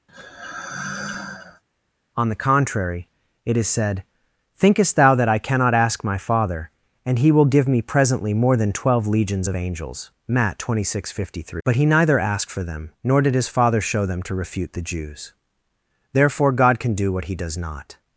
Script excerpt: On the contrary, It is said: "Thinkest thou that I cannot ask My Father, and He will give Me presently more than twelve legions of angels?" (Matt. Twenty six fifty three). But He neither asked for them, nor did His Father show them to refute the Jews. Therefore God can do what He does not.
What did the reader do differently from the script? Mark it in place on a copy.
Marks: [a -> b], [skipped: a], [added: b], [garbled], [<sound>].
[sigh] On the contrary, It is said: "Thinkest thou that I cannot ask My Father, and He will give Me presently more than twelve legions of angels?" (Matt. Twenty six fifty three). But He neither asked for them, nor did His Father show them to refute the Jews. Therefore God can do what He does not.